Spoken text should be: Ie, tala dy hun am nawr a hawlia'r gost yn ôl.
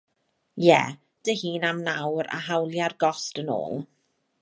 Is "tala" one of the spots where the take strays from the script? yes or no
yes